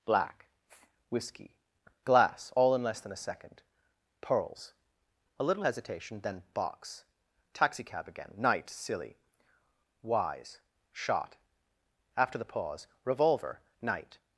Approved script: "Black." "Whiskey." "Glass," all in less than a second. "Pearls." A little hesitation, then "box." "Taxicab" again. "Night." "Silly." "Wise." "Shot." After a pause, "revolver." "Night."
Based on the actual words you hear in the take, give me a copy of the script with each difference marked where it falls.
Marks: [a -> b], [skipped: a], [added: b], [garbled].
"Black." "Whiskey." "Glass," all in less than a second. "Pearls." A little hesitation, then "box." "Taxicab" again. "Night." "Silly." "Wise." "Shot." After [a -> the] pause, "revolver." "Night."